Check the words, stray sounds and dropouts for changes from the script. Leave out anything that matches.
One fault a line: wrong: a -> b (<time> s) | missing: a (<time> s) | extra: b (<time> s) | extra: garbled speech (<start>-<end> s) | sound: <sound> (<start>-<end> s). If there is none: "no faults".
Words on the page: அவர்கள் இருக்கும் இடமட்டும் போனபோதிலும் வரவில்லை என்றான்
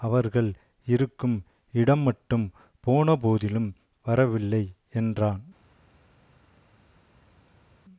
no faults